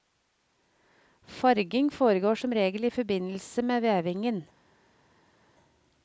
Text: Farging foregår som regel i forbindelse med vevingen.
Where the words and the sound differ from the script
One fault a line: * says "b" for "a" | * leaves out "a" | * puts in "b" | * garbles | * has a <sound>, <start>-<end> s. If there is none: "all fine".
all fine